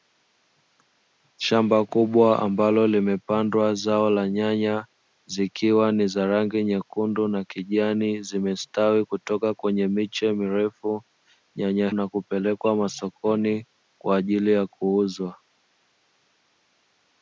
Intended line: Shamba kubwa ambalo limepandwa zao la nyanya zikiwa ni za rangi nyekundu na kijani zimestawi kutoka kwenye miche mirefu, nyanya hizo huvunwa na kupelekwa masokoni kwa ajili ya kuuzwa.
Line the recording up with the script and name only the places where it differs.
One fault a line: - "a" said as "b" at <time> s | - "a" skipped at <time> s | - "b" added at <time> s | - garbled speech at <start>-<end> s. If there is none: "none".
- "hizo huvunwa" skipped at 11.9 s